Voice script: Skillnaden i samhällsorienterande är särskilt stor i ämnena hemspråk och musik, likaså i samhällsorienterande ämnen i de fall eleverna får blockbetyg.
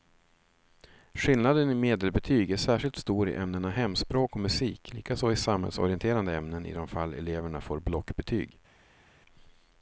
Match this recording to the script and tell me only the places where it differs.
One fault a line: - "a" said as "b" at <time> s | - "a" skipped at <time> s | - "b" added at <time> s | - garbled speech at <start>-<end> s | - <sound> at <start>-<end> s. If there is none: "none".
- "samhällsorienterande" said as "medelbetyg" at 1.8 s